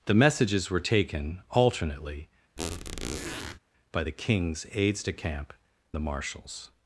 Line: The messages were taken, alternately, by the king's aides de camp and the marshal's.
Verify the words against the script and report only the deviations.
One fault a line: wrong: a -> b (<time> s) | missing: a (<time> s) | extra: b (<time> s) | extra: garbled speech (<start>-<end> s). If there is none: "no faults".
missing: and (5.5 s)